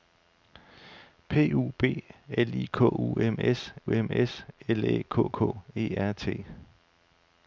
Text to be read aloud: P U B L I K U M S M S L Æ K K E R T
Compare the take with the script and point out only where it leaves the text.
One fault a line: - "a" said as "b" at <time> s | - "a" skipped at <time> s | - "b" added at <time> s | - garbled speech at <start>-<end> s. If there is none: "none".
none